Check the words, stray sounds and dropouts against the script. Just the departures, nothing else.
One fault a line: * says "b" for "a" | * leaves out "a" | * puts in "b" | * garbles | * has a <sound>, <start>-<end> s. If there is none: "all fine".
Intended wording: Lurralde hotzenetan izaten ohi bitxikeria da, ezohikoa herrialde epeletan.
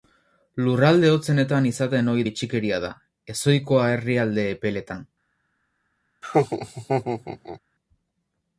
* has a laugh, 6.2-7.6 s